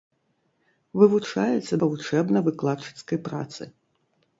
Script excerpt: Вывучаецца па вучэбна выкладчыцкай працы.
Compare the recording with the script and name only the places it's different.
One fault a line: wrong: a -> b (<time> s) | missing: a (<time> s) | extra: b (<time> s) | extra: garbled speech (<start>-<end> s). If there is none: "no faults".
no faults